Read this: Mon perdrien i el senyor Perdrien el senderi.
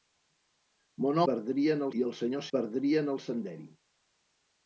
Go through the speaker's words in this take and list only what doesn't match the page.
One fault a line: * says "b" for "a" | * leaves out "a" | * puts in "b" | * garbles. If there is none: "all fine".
all fine